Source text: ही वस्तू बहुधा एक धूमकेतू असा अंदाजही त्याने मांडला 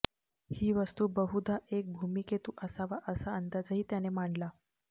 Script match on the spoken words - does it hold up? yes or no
no